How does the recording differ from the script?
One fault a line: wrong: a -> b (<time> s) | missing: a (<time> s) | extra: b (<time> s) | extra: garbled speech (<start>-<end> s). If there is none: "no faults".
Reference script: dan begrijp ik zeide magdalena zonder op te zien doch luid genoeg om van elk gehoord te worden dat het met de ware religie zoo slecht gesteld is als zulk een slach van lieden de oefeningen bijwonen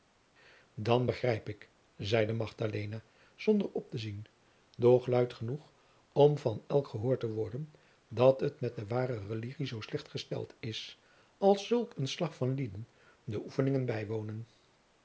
no faults